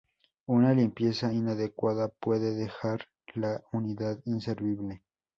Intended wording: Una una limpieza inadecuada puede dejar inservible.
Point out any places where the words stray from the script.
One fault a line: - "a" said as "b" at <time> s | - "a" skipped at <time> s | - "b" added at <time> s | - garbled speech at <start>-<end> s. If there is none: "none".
- "una" skipped at 0.7 s
- "la unidad" added at 3.3 s